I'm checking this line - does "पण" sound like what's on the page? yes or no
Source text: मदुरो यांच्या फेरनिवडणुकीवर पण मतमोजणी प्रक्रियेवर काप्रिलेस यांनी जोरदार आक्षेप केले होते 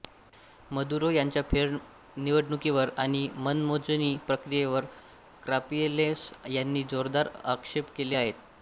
no